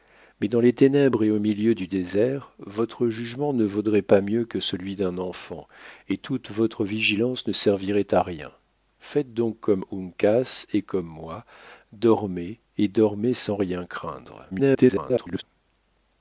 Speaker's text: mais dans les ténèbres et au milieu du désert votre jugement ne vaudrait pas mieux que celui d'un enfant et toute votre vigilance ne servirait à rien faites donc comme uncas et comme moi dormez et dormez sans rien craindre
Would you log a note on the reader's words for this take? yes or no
yes